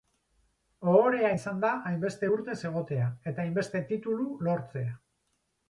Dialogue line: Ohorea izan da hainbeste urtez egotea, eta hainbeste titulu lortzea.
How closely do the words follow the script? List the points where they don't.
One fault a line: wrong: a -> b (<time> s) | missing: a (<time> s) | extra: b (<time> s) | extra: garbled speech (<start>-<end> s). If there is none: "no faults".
no faults